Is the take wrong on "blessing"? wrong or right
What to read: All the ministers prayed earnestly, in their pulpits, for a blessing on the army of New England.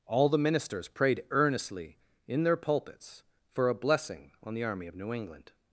right